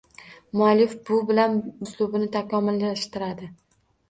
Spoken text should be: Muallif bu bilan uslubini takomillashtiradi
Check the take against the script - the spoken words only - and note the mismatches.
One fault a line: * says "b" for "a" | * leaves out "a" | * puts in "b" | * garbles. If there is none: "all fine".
all fine